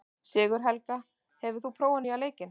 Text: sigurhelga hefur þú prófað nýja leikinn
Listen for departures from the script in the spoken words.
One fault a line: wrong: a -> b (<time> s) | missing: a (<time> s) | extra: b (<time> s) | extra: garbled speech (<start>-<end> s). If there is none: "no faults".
no faults